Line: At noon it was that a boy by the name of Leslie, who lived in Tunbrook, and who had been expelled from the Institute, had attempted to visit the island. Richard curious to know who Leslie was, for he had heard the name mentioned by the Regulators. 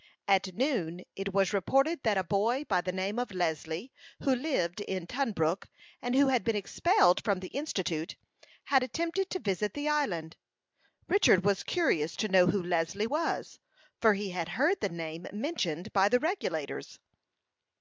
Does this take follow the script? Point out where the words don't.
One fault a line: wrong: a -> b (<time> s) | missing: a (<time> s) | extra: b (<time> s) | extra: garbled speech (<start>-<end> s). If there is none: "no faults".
extra: reported (1.5 s)
extra: was (11.4 s)